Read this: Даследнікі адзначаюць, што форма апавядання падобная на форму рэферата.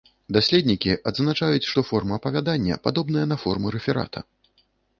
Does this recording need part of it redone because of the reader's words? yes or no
no